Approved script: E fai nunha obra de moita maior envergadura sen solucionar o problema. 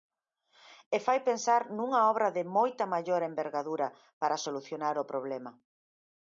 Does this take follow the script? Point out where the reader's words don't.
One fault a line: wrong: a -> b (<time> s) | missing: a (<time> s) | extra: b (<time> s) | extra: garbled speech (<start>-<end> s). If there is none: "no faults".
extra: pensar (1.3 s)
wrong: sen -> para (4.2 s)